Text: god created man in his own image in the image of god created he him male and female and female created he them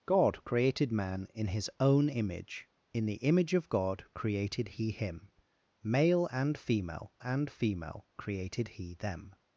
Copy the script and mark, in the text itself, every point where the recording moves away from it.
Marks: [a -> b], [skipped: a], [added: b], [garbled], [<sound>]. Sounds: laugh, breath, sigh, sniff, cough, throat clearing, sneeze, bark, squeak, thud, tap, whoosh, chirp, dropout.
god created man in his own image in the image of god created he him male and female and female created he them